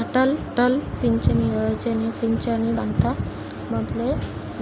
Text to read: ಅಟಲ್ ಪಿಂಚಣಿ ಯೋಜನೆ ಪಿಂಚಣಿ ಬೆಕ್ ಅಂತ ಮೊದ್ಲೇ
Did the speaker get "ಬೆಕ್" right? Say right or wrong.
wrong